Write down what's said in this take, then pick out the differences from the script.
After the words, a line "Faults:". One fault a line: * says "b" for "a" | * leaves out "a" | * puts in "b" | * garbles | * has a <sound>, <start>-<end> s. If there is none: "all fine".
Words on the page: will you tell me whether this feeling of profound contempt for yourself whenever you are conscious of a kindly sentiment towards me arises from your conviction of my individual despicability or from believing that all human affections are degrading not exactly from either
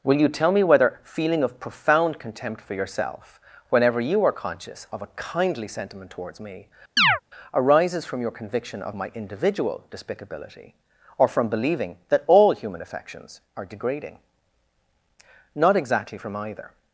will you tell me whether feeling of profound contempt for yourself whenever you are conscious of a kindly sentiment towards me arises from your conviction of my individual despicability or from believing that all human affections are degrading not exactly from either
Faults:
* leaves out "this"
* has a chirp, 7.0-7.2 s